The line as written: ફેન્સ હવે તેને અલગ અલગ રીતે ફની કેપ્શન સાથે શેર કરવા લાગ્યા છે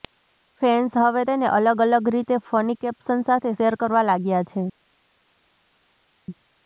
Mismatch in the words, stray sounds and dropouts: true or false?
false